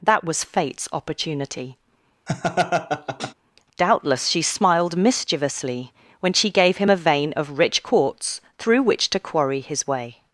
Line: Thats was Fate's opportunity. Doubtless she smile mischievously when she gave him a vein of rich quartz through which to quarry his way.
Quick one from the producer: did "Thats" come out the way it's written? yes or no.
no